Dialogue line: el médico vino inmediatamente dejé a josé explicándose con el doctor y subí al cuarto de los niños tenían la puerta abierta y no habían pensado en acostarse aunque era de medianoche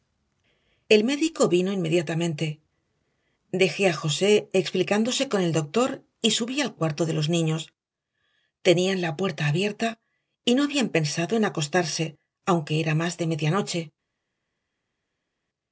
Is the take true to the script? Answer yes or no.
no